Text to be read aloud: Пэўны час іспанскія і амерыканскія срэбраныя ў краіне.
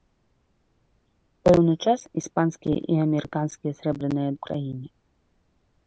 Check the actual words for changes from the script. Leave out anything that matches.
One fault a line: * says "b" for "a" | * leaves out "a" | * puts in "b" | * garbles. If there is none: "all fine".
all fine